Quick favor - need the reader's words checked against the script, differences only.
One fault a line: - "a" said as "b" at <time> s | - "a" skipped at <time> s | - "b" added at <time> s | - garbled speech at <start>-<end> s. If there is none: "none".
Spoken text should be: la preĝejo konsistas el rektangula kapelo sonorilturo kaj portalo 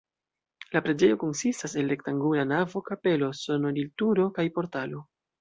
- "navo" added at 2.5 s